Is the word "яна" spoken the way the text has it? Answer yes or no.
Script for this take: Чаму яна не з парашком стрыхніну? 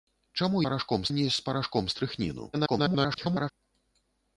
no